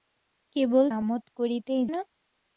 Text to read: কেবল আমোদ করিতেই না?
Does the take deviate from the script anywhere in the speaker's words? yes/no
no